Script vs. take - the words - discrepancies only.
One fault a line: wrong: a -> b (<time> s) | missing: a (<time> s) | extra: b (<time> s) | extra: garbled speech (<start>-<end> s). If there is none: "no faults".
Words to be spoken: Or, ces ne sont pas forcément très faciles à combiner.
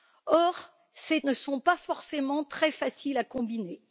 no faults